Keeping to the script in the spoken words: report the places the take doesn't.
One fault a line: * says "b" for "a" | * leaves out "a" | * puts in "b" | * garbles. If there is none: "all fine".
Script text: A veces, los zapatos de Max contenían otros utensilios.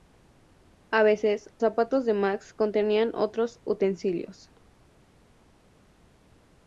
* leaves out "los"